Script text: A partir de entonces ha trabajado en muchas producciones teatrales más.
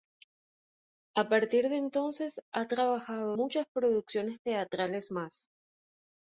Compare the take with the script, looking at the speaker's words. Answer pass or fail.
fail